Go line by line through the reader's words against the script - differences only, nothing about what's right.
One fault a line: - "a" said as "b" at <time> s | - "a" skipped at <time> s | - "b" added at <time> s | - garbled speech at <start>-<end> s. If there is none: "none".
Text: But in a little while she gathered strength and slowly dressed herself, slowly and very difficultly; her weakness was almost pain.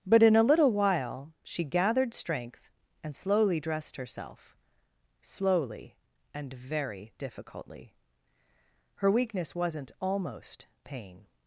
- "was" said as "wasn't" at 9.5 s